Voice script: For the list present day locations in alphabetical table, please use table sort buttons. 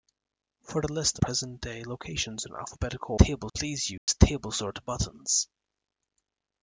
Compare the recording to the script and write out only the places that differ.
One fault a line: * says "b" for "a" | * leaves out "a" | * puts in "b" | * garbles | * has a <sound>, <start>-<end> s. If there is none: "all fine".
* has a dropout, 4.0-4.1 s